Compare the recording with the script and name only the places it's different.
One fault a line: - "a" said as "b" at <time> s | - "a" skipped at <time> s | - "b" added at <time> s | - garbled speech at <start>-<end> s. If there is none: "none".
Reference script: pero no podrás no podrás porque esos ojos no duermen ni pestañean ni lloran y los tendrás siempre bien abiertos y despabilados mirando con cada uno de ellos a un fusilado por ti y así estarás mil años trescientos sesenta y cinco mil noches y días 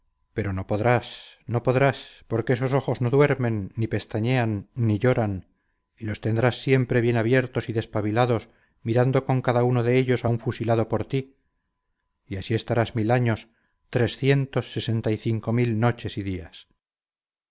none